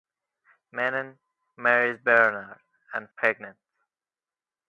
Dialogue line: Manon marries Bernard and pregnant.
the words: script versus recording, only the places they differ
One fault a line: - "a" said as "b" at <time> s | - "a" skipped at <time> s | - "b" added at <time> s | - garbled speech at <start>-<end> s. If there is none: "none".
none